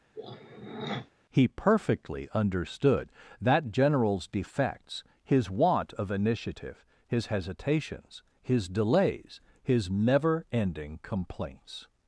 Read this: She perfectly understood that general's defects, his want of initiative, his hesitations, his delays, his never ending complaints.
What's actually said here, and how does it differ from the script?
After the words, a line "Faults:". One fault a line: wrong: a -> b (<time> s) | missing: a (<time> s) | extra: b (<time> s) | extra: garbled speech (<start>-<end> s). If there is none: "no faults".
He perfectly understood that general's defects, his want of initiative, his hesitations, his delays, his never ending complaints.
Faults:
wrong: She -> He (1.3 s)